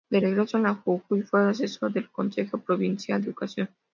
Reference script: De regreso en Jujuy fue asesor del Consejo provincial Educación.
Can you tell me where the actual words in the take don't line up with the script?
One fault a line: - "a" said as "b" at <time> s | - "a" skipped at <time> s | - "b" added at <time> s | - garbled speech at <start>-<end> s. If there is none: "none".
none